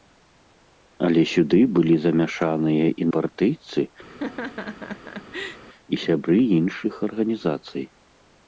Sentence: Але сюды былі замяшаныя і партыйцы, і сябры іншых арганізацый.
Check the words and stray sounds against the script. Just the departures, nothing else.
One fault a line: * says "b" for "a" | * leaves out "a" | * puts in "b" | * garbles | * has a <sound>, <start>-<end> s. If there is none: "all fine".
* has a laugh, 4.1-5.6 s